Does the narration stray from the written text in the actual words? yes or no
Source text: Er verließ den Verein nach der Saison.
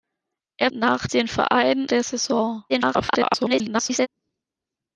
yes